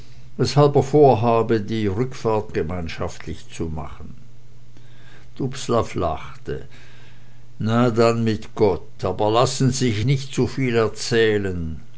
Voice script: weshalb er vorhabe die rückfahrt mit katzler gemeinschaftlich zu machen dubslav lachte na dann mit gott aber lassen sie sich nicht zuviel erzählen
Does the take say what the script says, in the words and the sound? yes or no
no